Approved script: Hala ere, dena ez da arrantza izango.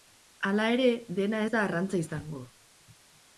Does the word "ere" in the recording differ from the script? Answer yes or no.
no